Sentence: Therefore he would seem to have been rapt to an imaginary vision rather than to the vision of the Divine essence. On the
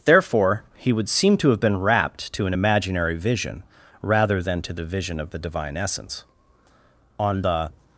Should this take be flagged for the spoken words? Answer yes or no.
no